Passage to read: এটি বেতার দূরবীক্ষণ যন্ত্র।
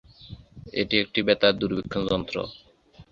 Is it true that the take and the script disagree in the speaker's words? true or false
true